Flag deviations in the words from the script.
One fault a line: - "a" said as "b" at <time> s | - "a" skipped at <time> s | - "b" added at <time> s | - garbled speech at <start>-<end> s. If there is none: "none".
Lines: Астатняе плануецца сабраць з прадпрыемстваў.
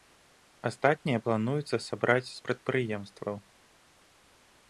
none